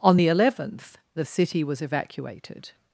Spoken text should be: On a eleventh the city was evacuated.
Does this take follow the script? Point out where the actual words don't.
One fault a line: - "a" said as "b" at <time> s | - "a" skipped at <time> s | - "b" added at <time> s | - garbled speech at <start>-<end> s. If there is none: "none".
- "a" said as "the" at 0.2 s